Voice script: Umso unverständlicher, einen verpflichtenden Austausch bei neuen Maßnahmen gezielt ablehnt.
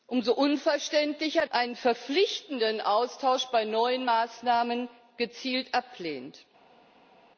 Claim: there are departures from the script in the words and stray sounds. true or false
false